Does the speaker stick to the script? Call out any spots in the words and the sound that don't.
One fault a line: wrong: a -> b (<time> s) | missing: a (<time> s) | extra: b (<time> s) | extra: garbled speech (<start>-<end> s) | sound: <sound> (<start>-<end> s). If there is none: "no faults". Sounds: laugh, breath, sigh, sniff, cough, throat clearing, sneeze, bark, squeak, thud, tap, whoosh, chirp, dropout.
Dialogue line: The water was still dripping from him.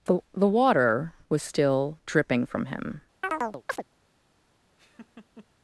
extra: the (0.3 s)
sound: chirp (3.2-3.8 s)
sound: laugh (4.8-5.5 s)